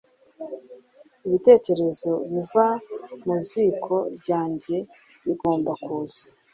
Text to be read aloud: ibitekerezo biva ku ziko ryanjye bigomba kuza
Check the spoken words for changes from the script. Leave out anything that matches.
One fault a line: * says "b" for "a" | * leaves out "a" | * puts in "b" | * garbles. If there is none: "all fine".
* says "mu" for "ku"